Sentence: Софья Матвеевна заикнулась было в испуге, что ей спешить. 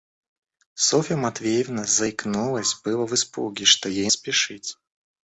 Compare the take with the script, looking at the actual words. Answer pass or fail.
pass